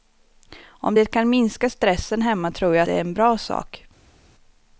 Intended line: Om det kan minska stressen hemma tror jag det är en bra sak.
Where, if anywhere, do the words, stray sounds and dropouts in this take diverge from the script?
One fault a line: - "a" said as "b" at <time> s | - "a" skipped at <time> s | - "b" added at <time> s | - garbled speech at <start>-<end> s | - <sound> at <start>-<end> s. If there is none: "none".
none